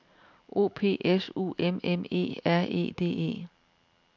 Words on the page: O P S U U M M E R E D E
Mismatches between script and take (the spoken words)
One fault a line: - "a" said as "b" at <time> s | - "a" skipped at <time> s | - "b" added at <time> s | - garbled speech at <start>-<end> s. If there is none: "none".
- "U" skipped at 1.5 s